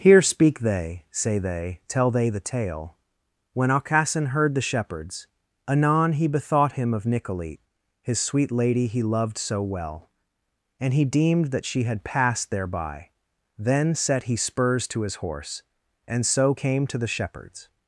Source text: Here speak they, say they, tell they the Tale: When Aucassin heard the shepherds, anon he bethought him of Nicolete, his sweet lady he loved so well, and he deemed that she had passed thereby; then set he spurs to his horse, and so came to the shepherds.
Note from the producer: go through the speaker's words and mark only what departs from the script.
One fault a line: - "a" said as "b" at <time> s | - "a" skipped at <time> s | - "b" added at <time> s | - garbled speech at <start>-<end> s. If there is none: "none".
none